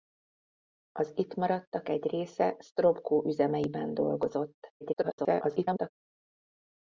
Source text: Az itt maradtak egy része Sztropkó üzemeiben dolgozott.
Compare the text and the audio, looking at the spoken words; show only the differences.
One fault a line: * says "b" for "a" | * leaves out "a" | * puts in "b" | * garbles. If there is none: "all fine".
* garbles